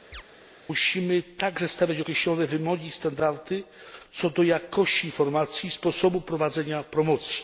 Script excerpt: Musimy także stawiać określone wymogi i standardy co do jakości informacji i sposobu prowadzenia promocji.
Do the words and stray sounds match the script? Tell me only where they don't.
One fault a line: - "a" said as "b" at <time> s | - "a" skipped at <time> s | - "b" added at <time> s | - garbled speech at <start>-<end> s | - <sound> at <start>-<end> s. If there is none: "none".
- chirp at 0.1-0.2 s